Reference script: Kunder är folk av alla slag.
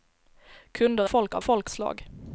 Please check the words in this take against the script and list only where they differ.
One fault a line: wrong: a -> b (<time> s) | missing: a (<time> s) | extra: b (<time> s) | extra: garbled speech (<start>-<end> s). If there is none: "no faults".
missing: är (1.1 s)
wrong: alla -> folk (1.4 s)